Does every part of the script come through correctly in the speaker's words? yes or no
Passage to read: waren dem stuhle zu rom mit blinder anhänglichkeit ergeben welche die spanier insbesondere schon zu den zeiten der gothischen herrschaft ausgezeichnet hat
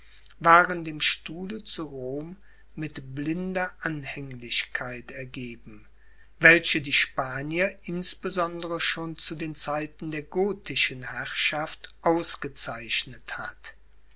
yes